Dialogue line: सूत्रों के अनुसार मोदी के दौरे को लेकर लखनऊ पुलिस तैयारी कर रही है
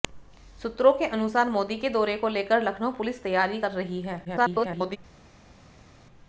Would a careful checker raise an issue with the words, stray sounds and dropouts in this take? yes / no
yes